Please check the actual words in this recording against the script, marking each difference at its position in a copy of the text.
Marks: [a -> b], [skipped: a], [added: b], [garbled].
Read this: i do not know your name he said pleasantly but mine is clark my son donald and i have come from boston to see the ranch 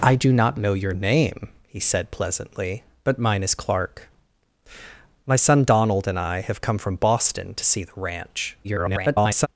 i do not know your name he said pleasantly but mine is clark my son donald and i have come from boston to see the ranch [garbled]